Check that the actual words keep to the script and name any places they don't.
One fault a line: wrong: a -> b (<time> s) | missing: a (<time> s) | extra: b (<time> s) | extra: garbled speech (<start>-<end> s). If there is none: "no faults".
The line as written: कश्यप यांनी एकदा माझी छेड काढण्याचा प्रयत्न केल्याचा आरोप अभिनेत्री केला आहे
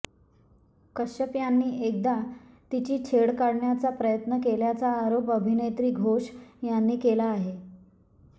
wrong: माझी -> तिची (2.7 s)
extra: घोष यांनी (5.9 s)